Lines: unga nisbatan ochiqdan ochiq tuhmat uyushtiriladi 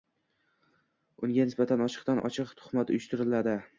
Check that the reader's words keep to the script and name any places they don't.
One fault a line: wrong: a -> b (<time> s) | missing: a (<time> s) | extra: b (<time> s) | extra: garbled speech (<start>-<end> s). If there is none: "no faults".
no faults